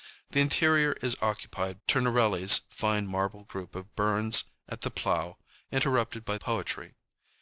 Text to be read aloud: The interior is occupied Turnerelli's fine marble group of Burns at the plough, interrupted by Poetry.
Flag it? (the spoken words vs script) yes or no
no